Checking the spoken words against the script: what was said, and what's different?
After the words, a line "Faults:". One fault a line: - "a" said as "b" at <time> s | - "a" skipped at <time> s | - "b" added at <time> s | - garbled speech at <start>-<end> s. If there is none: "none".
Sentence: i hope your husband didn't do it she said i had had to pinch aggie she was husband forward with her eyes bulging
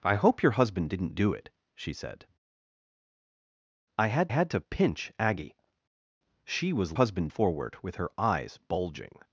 i hope your husband didn't do it she said i had had to pinch aggie she was husband forward with her eyes bulging
Faults:
none